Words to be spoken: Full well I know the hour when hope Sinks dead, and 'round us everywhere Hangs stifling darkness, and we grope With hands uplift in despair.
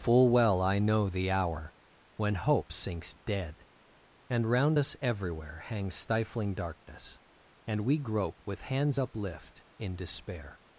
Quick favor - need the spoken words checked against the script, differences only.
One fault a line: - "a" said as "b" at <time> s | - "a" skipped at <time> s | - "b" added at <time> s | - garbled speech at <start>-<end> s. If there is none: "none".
none